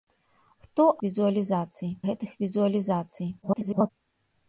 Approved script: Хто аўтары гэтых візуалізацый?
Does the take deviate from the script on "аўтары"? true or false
true